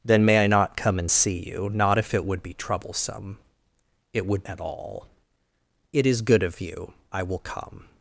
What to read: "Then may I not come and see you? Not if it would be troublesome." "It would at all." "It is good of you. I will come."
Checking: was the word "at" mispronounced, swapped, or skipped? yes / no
no